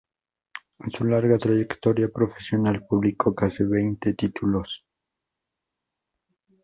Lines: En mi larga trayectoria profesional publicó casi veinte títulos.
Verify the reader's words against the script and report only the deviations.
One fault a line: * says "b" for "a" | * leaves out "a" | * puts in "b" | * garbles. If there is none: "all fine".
* says "su" for "mi"